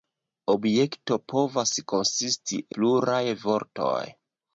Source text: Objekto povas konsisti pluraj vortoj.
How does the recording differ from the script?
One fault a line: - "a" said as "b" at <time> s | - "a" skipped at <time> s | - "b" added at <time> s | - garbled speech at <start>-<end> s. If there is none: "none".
none